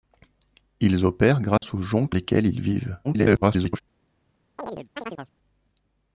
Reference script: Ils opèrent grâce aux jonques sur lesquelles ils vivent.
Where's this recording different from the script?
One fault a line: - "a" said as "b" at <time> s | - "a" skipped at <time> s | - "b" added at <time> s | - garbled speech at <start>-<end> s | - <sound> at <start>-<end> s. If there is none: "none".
- dropout at 1.6-1.6 s
- "sur" skipped at 2.1 s
- garbled speech at 3.0-3.8 s
- chirp at 4.6-5.3 s